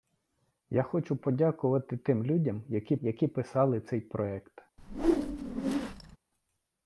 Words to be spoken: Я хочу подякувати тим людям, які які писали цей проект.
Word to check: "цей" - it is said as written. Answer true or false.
true